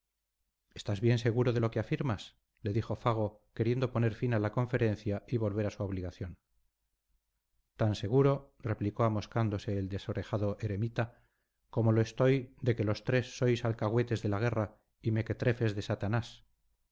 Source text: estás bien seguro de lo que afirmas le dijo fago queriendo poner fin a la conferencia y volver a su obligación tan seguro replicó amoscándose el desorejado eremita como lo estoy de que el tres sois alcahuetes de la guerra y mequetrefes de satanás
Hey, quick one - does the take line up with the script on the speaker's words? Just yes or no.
no